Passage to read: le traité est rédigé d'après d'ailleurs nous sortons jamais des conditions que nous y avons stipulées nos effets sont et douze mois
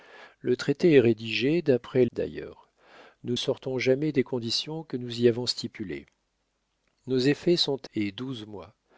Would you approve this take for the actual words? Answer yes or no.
yes